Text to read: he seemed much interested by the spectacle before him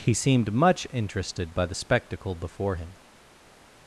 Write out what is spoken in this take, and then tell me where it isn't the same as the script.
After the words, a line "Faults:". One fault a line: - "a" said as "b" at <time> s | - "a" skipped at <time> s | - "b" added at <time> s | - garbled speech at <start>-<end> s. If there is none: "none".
he seemed much interested by the spectacle before him
Faults:
none